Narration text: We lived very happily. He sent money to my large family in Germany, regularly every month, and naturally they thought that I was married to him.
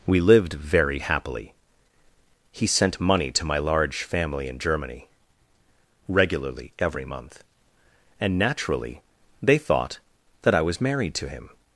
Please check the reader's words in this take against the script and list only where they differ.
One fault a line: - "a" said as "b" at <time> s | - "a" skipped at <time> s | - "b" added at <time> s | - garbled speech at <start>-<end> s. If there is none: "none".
none